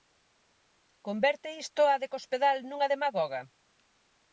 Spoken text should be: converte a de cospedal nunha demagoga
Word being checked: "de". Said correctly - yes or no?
yes